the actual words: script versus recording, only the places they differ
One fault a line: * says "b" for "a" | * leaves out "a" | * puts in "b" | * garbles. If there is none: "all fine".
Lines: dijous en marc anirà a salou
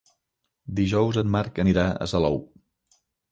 all fine